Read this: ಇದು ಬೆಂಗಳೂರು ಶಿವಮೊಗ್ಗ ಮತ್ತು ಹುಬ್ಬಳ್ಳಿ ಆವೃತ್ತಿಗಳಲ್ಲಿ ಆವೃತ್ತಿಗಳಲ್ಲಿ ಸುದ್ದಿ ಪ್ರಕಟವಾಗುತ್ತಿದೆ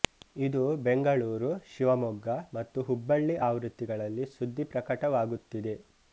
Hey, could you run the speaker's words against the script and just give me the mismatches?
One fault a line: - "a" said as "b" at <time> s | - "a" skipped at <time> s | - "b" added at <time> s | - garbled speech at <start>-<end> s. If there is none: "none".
- "ಆವೃತ್ತಿಗಳಲ್ಲಿ" skipped at 4.3 s